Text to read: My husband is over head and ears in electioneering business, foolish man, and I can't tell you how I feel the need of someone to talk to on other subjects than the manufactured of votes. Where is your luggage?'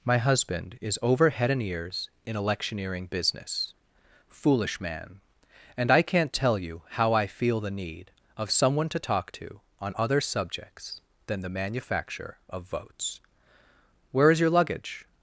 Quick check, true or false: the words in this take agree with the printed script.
false